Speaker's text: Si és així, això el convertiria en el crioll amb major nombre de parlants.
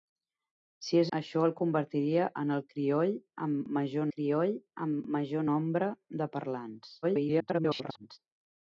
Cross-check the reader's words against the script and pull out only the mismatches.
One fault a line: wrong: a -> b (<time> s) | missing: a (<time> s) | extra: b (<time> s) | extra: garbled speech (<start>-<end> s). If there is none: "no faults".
missing: així (1.1 s)
extra: crioll amb major (4.2 s)
extra: garbled speech (7.0-8.2 s)